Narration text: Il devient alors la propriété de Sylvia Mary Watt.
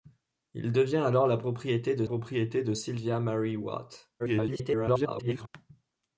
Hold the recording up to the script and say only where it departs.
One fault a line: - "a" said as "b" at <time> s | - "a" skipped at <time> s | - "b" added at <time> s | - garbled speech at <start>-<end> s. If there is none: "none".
- "propriété de" added at 2.0 s
- garbled speech at 4.2-5.5 s